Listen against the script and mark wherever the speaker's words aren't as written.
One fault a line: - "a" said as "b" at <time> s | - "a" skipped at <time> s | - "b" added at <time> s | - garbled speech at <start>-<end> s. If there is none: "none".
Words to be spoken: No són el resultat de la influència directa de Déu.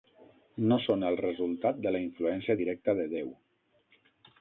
none